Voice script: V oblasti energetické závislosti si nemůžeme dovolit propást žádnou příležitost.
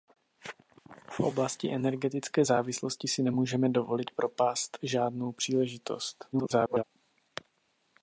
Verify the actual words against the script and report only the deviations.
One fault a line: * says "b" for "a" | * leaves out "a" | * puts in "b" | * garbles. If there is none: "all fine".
* garbles